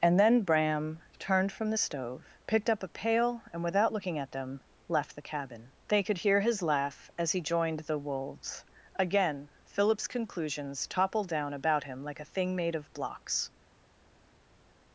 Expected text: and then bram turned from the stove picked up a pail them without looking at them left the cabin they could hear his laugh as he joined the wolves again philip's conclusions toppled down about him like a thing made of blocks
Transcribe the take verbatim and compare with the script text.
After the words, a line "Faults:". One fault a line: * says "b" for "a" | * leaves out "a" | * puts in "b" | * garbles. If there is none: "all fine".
and then bram turned from the stove picked up a pail and without looking at them left the cabin they could hear his laugh as he joined the wolves again philip's conclusions toppled down about him like a thing made of blocks
Faults:
* says "and" for "them"